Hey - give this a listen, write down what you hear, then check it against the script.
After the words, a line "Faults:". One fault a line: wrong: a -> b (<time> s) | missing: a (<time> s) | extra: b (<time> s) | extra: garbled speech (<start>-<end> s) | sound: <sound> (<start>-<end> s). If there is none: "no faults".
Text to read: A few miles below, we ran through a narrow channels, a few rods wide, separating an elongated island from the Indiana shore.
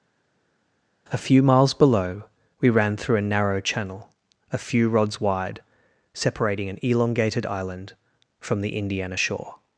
A few miles below, we ran through a narrow channel, a few rods wide, separating an elongated island from the Indiana shore.
Faults:
wrong: channels -> channel (3.6 s)